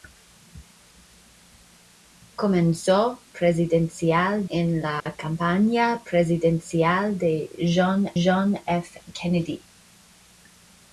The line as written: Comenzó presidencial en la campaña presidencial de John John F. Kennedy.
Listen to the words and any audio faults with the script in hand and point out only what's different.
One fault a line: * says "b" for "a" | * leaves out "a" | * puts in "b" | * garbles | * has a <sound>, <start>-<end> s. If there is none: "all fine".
* has a dropout, 5.0-5.1 s